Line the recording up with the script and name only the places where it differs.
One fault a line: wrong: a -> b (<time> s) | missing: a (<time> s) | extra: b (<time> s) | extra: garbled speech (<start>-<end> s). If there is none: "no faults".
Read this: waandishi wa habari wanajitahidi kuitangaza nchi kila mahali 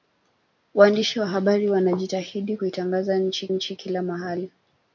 extra: nchi (3.5 s)